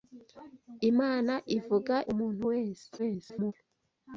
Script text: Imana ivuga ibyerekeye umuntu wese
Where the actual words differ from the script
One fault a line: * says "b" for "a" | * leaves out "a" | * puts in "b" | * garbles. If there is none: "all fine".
* leaves out "ibyerekeye"
* garbles